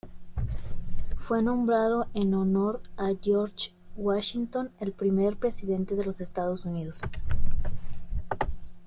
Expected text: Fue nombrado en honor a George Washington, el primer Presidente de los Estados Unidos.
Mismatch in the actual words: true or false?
false